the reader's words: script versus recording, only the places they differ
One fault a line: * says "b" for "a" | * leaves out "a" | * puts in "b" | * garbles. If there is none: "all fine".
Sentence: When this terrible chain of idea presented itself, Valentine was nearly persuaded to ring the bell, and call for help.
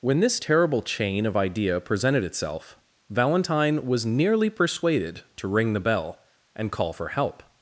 all fine